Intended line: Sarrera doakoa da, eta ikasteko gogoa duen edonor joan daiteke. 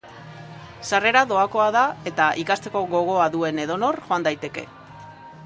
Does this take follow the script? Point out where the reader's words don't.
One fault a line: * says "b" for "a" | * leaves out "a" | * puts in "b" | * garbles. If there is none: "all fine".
all fine